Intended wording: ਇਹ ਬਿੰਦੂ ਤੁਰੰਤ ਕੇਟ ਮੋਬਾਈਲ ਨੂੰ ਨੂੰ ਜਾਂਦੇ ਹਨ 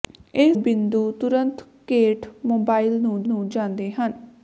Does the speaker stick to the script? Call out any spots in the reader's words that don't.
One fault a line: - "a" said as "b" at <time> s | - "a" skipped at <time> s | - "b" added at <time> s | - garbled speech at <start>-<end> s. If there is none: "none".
none